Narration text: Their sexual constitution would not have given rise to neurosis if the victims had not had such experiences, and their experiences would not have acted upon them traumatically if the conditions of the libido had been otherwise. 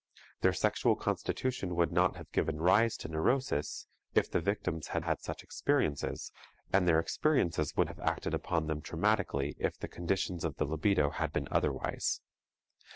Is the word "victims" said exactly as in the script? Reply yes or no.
yes